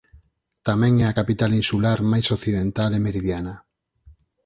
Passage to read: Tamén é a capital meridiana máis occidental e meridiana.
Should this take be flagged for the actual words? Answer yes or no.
yes